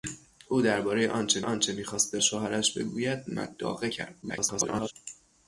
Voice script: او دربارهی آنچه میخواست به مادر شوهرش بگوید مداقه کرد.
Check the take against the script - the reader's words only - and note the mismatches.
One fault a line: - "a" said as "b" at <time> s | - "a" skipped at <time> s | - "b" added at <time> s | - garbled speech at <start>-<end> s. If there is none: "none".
- "آنچه" added at 1.4 s
- "مادر" skipped at 2.2 s
- garbled speech at 4.2-4.9 s